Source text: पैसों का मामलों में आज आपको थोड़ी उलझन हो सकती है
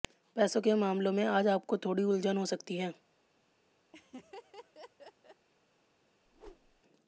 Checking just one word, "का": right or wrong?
wrong